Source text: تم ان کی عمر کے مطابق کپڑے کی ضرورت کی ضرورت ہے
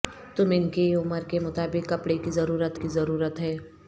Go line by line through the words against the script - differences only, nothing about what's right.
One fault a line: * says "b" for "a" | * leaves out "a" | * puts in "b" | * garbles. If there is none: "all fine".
all fine